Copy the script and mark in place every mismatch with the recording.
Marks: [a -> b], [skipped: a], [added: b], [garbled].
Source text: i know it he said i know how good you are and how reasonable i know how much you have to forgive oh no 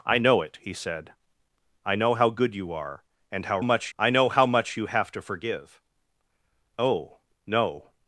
i know it he said i know how good you are and how [reasonable -> much] i know how much you have to forgive oh no